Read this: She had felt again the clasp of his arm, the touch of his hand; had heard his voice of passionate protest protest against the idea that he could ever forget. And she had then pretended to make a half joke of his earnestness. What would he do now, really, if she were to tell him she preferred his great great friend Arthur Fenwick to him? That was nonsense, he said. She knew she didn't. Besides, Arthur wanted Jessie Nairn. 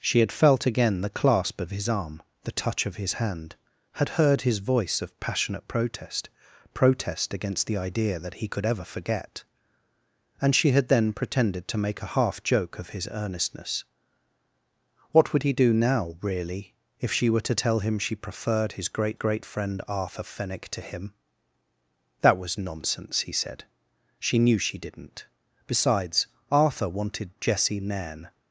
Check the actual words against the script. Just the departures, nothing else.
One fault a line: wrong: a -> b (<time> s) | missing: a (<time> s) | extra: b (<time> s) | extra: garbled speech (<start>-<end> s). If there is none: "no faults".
no faults